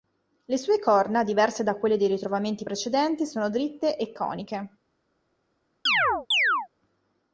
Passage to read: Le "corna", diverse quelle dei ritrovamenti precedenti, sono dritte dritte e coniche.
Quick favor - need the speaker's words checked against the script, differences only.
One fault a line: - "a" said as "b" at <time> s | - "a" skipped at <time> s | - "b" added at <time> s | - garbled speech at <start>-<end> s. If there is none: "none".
- "sue" added at 0.6 s
- "da" added at 1.6 s
- "dritte" skipped at 4.0 s